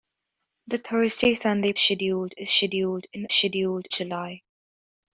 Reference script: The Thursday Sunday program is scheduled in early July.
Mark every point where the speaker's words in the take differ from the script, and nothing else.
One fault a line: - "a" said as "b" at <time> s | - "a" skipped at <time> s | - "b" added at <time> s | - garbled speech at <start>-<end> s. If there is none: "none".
- "program" said as "scheduled" at 1.8 s
- "early" said as "scheduled" at 3.3 s